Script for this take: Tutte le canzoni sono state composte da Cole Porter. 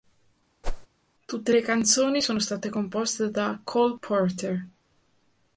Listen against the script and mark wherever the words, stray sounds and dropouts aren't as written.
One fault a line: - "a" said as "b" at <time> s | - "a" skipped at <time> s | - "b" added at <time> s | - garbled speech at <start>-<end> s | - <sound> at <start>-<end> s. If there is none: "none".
- whoosh at 0.6-0.9 s